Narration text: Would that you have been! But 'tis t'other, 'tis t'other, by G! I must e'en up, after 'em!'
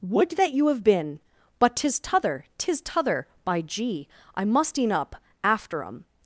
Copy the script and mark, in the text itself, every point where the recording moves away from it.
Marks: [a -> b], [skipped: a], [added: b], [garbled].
Would that you have been! But 'tis t'other, 'tis t'other, by G! I must e'en up, after 'em!'